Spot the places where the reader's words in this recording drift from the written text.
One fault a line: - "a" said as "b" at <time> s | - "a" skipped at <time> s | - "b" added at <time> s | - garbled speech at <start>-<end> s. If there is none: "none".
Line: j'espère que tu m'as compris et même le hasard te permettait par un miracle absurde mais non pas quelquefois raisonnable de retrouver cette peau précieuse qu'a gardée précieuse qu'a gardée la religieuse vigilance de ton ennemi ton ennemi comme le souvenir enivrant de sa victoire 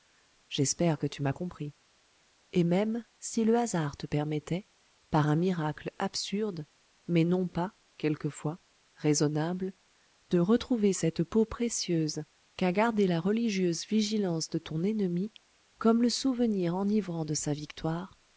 - "si" added at 3.2 s
- "précieuse qu'a gardée" skipped at 13.1 s
- "ton ennemi" skipped at 15.3 s